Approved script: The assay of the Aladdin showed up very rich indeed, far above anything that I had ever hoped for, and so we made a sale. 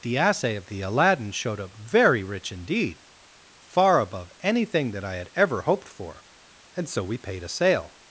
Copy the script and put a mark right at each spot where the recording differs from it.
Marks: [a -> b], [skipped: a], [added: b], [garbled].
The assay of the Aladdin showed up very rich indeed, far above anything that I had ever hoped for, and so we [made -> paid] a sale.